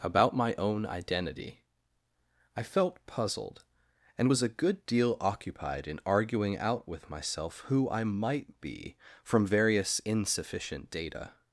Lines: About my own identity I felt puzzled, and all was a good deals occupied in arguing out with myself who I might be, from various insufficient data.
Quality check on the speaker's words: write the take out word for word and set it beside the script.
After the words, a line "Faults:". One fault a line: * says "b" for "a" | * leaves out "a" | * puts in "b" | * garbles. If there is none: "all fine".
About my own identity I felt puzzled, and was a good deal occupied in arguing out with myself who I might be, from various insufficient data.
Faults:
* leaves out "all"
* says "deal" for "deals"